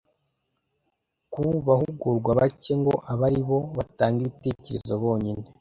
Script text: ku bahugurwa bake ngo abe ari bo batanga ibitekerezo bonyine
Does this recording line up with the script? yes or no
yes